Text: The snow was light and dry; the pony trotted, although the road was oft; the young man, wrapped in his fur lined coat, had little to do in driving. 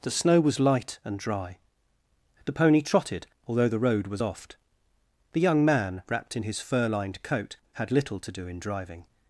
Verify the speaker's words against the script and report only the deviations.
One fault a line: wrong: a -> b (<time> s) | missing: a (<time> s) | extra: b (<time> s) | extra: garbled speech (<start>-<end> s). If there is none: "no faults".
no faults